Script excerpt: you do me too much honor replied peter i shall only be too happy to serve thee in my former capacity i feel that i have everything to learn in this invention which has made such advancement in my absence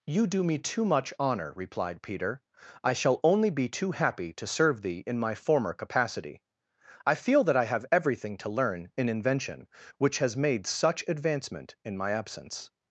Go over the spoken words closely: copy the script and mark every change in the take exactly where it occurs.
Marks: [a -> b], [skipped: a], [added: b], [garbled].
you do me too much honor replied peter i shall only be too happy to serve thee in my former capacity i feel that i have everything to learn in [skipped: this] invention which has made such advancement in my absence